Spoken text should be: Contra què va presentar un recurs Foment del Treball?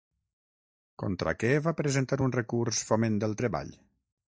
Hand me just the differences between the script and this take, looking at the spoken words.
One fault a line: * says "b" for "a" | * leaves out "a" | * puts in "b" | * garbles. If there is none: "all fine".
all fine